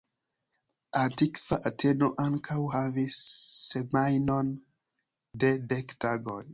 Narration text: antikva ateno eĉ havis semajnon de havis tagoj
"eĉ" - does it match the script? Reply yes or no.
no